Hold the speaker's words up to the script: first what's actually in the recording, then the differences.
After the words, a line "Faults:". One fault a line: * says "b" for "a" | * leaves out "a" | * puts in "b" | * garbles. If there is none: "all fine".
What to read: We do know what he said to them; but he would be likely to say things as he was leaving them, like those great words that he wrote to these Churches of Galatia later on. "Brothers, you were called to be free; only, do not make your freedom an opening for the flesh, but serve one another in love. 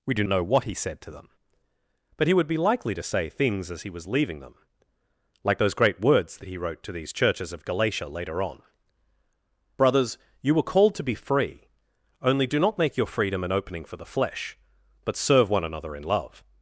We do know what he said to them; but he would be likely to say things as he was leaving them, like those great words that he wrote to these Churches of Galatia later on. "Brothers, you were called to be free; only, do not make your freedom an opening for the flesh, but serve one another in love.
Faults:
all fine